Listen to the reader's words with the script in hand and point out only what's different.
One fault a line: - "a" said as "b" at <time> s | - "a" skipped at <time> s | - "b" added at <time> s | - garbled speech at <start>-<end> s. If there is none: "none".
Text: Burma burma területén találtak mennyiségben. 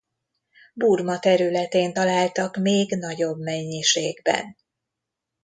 - "burma" skipped at 1.2 s
- "még nagyobb" added at 2.6 s